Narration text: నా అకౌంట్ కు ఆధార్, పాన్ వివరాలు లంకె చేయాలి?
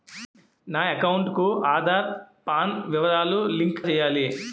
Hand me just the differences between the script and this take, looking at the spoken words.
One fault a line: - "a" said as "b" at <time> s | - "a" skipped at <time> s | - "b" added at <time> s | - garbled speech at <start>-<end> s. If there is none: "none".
none